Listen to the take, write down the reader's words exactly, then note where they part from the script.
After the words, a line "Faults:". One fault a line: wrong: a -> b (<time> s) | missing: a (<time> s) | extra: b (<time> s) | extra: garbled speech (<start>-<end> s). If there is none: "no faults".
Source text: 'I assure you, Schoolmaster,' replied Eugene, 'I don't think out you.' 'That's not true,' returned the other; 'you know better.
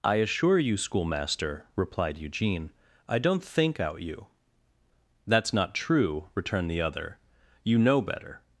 'I assure you, Schoolmaster,' replied Eugene, 'I don't think out you.' 'That's not true,' returned the other; 'you know better.
Faults:
no faults